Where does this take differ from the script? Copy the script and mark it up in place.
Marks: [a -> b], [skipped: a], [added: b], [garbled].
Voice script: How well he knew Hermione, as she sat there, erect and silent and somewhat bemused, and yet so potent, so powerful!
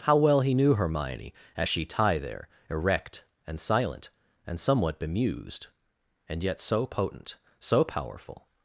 How well he knew Hermione, as she [sat -> tie] there, erect and silent and somewhat bemused, and yet so potent, so powerful!